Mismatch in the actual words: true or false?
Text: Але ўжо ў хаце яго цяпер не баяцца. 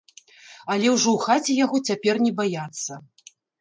false